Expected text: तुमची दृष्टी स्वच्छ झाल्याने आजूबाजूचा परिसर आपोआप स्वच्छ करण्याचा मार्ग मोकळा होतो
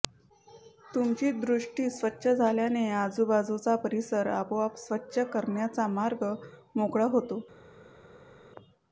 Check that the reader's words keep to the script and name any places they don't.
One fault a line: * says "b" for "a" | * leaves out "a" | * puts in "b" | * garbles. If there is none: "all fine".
all fine